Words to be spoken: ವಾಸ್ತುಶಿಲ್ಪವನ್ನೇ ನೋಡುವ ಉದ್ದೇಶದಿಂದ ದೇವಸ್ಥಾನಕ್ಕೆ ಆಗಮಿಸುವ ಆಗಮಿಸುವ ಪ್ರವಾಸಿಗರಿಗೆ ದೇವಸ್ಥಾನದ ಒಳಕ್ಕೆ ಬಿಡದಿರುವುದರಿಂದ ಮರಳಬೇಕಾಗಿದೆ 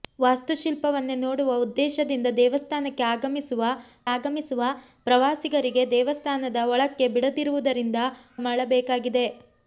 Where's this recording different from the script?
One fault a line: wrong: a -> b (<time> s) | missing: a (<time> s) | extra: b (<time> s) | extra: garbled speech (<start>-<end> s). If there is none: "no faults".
no faults